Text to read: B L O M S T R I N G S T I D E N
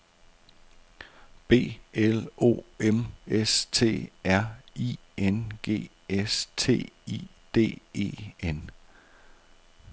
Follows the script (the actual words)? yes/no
yes